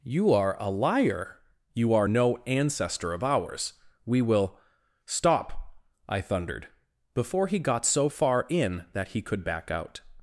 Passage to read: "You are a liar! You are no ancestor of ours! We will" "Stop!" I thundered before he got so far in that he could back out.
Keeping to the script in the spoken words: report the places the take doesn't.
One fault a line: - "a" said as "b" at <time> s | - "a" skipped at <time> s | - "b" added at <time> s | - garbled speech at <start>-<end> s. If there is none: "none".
none